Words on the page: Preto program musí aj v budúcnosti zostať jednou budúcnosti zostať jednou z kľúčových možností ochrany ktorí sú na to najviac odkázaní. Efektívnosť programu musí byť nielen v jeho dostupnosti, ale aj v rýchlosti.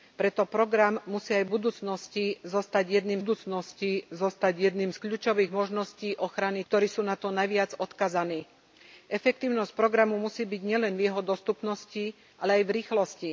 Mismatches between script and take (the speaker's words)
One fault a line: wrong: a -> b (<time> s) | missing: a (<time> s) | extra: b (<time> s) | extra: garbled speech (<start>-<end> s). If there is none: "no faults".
no faults